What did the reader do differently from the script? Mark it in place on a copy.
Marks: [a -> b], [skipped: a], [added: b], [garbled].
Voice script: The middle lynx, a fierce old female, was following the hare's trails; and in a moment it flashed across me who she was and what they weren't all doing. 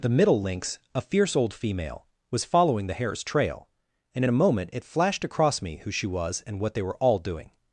The middle lynx, a fierce old female, was following the hare's [trails; -> trail] and in a moment it flashed across me who she was and what they [weren't -> were] all doing.